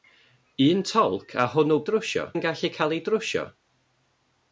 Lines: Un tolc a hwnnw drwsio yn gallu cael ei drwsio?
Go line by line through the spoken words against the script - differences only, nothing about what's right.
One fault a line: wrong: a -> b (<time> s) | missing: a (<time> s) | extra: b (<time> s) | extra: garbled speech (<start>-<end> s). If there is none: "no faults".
no faults